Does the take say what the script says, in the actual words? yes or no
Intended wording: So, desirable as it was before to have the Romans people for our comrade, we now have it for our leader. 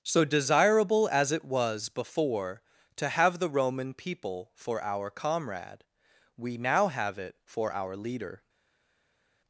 no